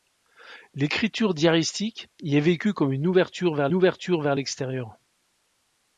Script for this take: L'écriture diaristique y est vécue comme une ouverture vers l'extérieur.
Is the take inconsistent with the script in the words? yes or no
yes